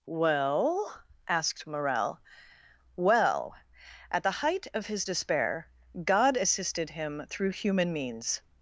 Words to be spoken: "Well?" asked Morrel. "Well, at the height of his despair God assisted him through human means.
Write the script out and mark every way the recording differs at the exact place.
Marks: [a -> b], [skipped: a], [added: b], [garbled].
"Well?" asked Morrel. "Well, at the height of his despair God assisted him through human means.